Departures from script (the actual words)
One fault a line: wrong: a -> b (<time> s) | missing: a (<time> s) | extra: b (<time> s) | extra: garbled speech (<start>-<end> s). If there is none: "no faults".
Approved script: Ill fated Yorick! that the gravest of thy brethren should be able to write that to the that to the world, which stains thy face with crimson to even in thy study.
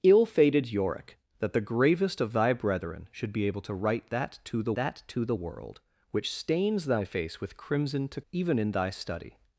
no faults